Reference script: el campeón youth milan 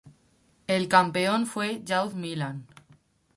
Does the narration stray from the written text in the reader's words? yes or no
yes